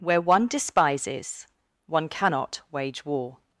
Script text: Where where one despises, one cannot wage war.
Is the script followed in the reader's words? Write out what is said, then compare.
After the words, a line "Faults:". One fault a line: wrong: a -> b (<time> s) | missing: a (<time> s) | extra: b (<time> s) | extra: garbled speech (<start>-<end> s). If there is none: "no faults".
Where one despises, one cannot wage war.
Faults:
missing: where (0.2 s)